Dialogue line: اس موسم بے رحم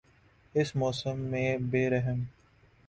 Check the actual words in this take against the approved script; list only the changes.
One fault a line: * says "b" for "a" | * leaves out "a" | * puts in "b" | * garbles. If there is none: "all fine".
* puts in "میں"